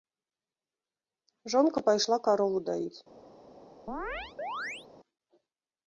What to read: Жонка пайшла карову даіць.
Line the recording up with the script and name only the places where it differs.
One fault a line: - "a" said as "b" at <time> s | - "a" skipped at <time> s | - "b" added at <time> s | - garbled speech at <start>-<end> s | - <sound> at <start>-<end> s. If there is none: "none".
- chirp at 3.9-4.9 s